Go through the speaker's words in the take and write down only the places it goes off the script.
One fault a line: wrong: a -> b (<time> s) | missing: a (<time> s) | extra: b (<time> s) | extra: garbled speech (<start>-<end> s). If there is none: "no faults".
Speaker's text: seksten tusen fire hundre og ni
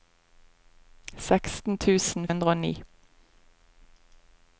missing: fire (2.3 s)